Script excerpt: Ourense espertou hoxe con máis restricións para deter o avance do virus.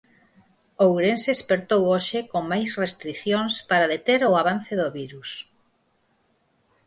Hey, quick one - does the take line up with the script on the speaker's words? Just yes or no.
yes